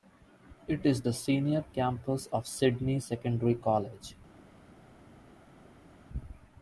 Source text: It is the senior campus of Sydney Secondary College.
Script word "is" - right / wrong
right